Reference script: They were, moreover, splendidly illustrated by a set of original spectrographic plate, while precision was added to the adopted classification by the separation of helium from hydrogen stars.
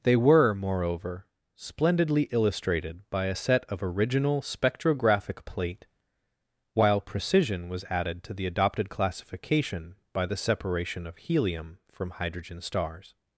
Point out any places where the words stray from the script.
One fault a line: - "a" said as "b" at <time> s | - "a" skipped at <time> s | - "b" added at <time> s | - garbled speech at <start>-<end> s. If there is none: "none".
none